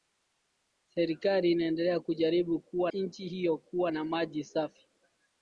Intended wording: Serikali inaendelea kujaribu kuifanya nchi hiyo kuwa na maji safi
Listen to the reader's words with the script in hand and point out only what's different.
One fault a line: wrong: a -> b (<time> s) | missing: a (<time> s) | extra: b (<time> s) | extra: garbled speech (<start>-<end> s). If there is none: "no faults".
wrong: kuifanya -> kuwa (2.6 s)